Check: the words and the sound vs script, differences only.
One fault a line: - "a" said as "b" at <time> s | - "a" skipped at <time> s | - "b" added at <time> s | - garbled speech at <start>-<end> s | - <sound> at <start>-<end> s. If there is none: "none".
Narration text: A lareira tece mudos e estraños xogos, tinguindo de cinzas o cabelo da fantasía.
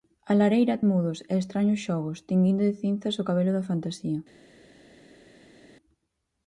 - "tece" skipped at 0.8 s